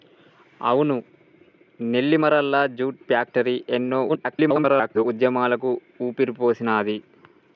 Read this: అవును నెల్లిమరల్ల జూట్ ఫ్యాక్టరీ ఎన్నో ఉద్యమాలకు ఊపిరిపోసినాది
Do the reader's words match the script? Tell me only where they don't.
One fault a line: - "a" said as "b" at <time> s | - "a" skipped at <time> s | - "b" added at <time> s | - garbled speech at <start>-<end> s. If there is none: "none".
- garbled speech at 4.1-5.0 s